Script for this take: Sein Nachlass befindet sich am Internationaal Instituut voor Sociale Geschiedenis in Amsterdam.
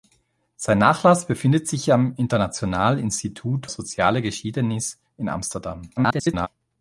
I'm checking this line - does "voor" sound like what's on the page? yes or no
no